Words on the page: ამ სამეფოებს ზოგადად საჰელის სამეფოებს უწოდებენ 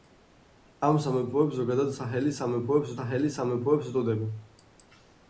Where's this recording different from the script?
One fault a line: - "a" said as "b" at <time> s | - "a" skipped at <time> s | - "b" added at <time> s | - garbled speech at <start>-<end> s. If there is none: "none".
- "საჰელის სამეფოებს" added at 3.0 s